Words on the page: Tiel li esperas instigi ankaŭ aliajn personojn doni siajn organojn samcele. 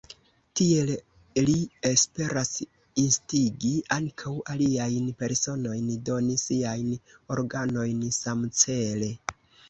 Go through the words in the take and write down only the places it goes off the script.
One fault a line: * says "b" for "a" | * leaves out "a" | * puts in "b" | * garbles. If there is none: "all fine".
all fine